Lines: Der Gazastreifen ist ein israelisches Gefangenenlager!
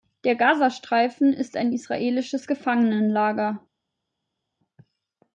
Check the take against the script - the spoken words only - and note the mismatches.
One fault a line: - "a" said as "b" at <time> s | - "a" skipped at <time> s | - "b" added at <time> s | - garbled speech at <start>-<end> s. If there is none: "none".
none